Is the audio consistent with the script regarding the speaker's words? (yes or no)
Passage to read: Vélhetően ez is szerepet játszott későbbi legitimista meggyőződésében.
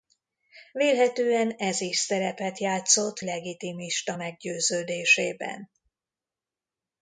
no